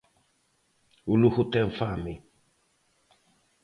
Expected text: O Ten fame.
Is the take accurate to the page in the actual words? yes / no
no